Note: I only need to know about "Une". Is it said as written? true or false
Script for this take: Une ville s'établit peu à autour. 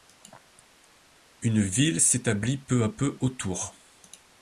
true